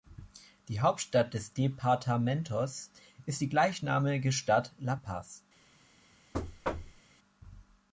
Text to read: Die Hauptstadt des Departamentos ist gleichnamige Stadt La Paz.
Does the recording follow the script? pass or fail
fail